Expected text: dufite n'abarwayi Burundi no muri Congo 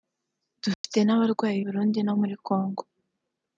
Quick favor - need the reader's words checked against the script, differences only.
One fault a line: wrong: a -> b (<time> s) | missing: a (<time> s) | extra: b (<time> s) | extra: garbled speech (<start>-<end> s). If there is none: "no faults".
no faults